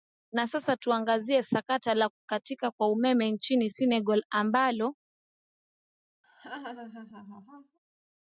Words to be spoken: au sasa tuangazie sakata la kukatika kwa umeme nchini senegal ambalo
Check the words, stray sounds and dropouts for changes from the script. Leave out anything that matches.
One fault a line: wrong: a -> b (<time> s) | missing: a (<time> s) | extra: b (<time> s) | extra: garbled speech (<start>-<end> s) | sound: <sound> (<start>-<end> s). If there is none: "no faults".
wrong: au -> na (0.3 s)
sound: laugh (6.2-7.8 s)